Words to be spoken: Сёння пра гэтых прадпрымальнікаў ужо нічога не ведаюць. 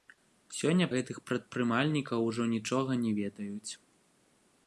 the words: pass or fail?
fail